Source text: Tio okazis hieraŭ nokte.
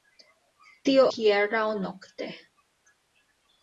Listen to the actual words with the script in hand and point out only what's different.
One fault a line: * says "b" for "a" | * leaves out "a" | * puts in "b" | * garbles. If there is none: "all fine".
* leaves out "okazis"